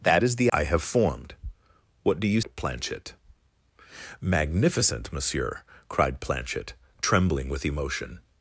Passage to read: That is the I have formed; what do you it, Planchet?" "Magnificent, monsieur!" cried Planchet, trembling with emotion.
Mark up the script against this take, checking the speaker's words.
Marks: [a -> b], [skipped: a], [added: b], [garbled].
That is the I have formed; what do you it, Planchet?" "Magnificent, monsieur!" cried Planchet, trembling with emotion.